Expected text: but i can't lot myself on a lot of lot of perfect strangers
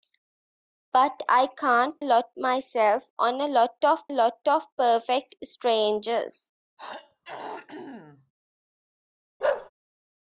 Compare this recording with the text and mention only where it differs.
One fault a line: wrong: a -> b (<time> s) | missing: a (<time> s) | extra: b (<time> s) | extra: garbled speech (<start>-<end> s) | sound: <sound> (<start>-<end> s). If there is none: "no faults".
sound: throat clearing (6.8-8.3 s)
sound: bark (9.4-9.7 s)